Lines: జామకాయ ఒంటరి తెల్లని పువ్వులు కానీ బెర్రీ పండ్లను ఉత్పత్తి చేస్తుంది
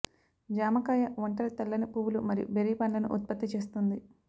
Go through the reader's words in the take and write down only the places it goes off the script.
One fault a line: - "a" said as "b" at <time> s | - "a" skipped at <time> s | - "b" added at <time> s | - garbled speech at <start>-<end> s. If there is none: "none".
- "కానీ" said as "మరియు" at 2.3 s